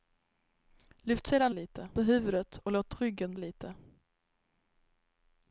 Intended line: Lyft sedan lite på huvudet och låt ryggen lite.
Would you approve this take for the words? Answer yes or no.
yes